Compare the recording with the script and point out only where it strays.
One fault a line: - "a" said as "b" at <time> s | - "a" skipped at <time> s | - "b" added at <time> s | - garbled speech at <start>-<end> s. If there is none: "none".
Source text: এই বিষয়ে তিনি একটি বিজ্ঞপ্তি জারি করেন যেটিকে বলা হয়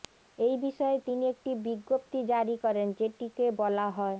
none